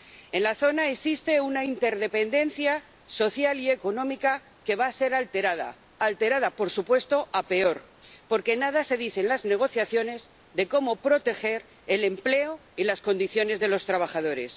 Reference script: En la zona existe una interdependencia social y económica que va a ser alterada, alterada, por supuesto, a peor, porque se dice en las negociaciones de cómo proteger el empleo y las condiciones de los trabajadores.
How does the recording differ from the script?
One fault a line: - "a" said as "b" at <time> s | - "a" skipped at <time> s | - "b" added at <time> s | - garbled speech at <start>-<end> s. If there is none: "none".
- "nada" added at 8.6 s